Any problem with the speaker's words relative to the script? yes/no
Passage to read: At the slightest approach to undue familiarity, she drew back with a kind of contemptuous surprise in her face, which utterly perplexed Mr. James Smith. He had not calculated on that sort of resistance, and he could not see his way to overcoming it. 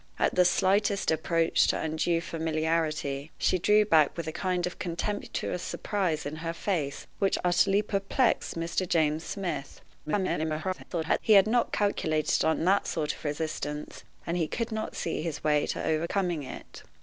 yes